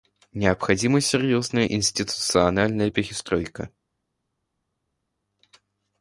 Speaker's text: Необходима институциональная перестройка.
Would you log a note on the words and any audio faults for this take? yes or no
yes